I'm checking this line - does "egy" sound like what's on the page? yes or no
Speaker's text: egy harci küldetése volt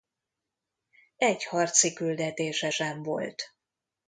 yes